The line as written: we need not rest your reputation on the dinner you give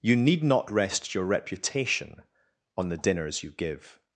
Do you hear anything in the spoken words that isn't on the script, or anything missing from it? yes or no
yes